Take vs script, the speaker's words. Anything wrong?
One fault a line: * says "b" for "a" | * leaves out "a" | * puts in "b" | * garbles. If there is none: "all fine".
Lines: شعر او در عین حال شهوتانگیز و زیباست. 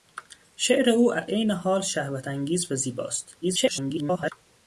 * leaves out "در"
* garbles